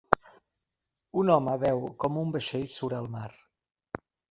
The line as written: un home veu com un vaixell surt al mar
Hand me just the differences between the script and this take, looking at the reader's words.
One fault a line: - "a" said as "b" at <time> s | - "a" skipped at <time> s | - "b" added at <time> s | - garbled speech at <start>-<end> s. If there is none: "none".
none